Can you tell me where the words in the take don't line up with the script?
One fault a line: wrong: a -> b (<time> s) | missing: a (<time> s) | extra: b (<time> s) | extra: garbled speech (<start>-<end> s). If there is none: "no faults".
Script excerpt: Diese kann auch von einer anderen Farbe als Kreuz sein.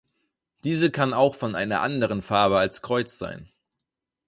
no faults